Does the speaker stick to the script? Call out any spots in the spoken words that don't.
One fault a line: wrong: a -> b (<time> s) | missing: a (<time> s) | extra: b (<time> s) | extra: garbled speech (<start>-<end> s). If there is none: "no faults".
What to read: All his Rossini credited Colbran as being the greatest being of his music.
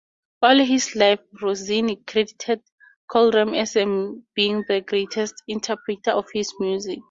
extra: life (0.9 s)
wrong: being -> interpreter (5.5 s)